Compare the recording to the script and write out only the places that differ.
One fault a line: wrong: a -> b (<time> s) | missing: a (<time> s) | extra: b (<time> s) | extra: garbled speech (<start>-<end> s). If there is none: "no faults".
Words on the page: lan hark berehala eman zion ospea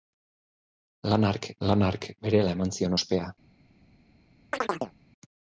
extra: lan hark (1.7 s)